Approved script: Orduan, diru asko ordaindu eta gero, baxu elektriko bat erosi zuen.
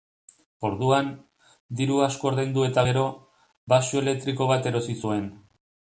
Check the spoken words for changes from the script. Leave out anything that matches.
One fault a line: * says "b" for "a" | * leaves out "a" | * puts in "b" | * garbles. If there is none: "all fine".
all fine